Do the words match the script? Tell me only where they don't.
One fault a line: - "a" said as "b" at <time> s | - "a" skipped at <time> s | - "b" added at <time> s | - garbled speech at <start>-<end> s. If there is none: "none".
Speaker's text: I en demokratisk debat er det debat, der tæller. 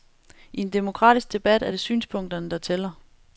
- "debat" said as "synspunkterne" at 1.8 s